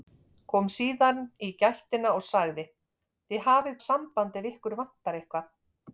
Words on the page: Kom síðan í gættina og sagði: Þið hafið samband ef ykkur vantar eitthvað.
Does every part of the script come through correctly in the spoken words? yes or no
yes